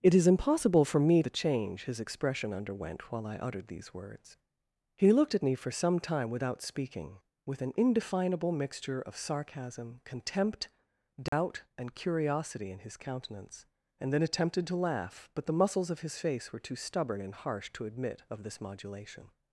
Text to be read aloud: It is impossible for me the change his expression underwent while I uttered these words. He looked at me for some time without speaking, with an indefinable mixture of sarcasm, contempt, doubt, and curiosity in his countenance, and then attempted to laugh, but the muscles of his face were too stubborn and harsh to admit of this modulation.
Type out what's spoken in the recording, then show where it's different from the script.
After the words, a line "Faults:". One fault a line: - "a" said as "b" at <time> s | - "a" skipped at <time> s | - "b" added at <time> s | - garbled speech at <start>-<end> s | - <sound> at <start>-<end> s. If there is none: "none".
It is impossible for me the change his expression underwent while I uttered these words. He looked at me for some time without speaking, with an indefinable mixture of sarcasm, contempt, doubt, and curiosity in his countenance, and then attempted to laugh, but the muscles of his face were too stubborn and harsh to admit of this modulation.
Faults:
- dropout at 11.3-11.3 s